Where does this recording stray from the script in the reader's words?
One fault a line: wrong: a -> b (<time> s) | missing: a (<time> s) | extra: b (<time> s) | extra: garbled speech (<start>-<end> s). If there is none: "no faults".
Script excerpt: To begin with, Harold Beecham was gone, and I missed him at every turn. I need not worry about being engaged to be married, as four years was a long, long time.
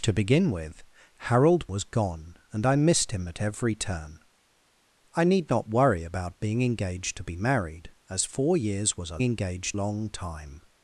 missing: Beecham (1.7 s)
wrong: long -> engaged (9.2 s)